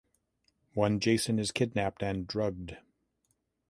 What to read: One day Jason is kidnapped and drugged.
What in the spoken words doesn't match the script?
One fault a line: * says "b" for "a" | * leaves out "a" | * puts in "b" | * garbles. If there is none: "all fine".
* leaves out "day"